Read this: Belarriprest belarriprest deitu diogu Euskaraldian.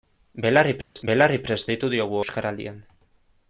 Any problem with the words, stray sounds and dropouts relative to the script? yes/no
yes